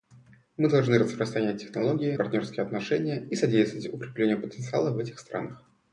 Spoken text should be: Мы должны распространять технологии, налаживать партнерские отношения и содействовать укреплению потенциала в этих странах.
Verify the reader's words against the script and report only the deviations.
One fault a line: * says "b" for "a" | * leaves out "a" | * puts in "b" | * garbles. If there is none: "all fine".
* leaves out "налаживать"